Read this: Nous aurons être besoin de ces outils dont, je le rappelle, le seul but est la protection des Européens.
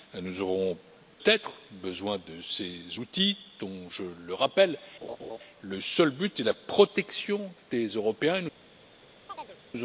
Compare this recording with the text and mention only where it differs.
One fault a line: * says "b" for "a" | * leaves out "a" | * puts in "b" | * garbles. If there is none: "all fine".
all fine